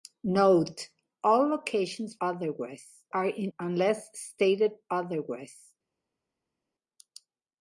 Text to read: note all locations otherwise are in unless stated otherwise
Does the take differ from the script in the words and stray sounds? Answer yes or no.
no